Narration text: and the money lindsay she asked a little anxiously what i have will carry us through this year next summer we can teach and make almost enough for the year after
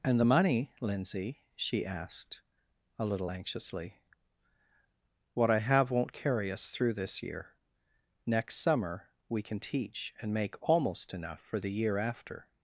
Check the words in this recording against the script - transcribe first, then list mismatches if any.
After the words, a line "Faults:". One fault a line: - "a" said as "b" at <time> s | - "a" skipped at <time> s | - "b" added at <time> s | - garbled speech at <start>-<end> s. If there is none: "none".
and the money lindsay she asked a little anxiously what i have won't carry us through this year next summer we can teach and make almost enough for the year after
Faults:
- "will" said as "won't" at 5.9 s